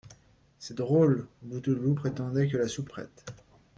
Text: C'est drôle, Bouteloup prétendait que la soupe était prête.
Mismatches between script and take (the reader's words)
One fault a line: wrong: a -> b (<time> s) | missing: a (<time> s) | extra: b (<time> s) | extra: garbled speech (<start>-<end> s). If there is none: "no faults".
missing: était (2.9 s)